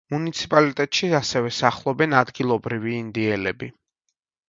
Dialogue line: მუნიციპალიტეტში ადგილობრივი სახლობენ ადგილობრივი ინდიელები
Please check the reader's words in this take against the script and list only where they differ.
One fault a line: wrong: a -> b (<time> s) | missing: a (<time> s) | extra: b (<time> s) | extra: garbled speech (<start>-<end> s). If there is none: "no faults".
wrong: ადგილობრივი -> ასევე (1.2 s)